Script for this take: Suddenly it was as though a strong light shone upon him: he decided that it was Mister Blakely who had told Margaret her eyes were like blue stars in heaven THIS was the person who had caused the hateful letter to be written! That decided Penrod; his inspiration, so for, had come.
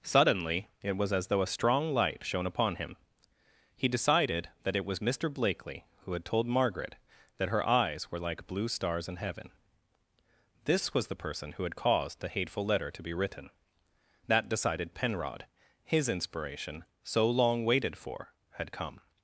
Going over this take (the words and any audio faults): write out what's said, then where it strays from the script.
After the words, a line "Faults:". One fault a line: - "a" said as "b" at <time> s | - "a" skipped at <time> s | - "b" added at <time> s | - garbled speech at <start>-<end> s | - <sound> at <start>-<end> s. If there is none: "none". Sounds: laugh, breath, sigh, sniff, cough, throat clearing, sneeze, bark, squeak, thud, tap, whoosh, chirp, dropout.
Suddenly it was as though a strong light shone upon him: he decided that it was Mister Blakely who had told Margaret that her eyes were like blue stars in heaven THIS was the person who had caused the hateful letter to be written! That decided Penrod; his inspiration, so long waited for, had come.
Faults:
- "that" added at 7.4 s
- "long waited" added at 17.3 s